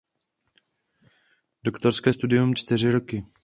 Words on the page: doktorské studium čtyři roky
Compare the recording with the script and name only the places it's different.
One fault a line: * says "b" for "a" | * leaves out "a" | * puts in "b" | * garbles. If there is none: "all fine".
all fine